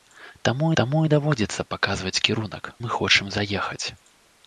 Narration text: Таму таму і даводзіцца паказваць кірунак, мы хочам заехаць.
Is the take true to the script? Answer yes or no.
yes